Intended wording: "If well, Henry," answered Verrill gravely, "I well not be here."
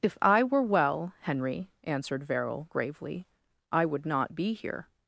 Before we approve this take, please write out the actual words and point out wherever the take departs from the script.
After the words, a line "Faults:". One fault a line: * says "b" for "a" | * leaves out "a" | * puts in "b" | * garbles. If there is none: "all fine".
"If I were well, Henry," answered Verrill gravely, "I would not be here."
Faults:
* puts in "I were"
* says "would" for "well"